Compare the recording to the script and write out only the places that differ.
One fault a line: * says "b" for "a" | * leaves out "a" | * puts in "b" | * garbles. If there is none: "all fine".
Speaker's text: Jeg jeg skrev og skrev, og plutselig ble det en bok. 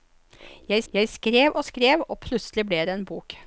all fine